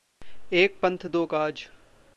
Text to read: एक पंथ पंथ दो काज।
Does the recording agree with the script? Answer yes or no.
no